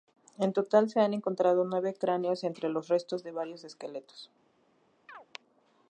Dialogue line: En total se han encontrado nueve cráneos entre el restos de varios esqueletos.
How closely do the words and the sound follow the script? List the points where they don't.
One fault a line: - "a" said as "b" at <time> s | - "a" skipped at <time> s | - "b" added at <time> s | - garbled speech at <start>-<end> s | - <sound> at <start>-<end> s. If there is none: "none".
- "el" said as "los" at 2.7 s
- chirp at 5.1-5.3 s